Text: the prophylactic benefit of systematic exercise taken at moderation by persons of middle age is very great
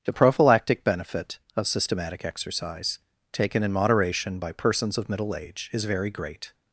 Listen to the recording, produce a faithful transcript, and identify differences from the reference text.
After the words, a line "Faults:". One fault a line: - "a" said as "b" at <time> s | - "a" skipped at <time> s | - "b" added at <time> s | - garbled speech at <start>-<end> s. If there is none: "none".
the prophylactic benefit of systematic exercise taken in moderation by persons of middle age is very great
Faults:
- "at" said as "in" at 3.6 s